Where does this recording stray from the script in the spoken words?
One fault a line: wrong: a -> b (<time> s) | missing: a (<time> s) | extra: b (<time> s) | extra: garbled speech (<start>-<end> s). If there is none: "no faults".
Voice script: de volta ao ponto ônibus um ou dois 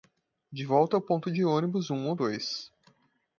extra: de (1.3 s)